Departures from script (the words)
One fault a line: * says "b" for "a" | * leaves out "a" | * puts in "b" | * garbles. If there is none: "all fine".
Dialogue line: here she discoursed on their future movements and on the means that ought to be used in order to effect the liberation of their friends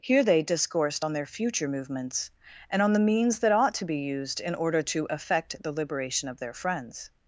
* says "they" for "she"